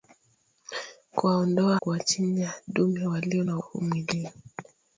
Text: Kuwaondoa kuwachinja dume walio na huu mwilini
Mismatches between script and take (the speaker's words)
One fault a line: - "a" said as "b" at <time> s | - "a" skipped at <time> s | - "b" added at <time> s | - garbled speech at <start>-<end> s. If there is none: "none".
none